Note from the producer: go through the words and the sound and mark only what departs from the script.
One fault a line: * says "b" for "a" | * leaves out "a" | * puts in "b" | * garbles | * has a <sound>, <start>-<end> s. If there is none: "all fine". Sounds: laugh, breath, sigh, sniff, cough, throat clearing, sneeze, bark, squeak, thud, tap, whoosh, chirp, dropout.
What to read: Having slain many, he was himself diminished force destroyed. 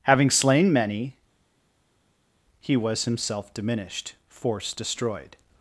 all fine